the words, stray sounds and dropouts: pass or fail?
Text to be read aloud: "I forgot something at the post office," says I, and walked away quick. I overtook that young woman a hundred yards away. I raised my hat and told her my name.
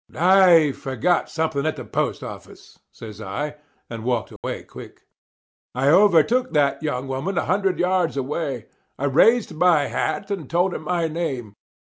fail